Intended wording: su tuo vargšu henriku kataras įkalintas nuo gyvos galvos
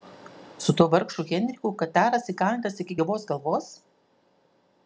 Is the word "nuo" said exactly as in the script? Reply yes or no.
no